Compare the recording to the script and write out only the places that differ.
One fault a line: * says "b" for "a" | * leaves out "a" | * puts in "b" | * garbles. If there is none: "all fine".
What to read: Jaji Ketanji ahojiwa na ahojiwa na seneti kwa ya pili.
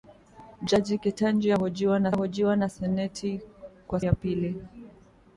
all fine